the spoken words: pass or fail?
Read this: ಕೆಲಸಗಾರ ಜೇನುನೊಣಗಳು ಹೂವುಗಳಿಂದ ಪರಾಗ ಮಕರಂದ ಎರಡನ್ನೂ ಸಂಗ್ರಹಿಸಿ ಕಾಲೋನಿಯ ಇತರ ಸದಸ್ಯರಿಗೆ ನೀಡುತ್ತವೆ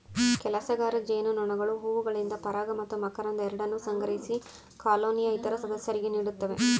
fail